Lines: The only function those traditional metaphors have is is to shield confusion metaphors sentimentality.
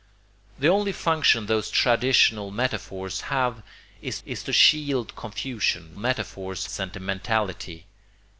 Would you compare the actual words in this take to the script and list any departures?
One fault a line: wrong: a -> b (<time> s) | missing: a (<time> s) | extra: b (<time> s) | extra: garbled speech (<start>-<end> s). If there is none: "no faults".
no faults